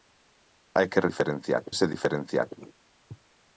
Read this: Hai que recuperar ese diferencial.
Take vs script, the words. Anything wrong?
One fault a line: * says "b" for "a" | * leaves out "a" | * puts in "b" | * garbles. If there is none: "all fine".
* says "diferencial" for "recuperar"